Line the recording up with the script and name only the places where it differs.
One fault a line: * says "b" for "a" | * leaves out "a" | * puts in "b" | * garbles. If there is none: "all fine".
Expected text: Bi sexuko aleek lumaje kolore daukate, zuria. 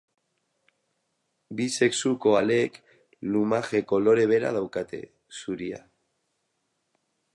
* puts in "bera"